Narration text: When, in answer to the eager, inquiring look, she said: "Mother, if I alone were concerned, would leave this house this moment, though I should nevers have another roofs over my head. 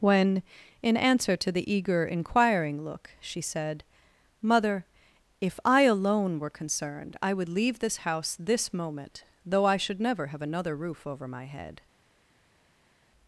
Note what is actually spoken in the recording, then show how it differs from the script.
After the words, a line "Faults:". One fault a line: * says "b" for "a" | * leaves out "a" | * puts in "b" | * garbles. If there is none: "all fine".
When, in answer to the eager, inquiring look, she said: "Mother, if I alone were concerned, I would leave this house this moment, though I should never have another roof over my head.
Faults:
* puts in "I"
* says "never" for "nevers"
* says "roof" for "roofs"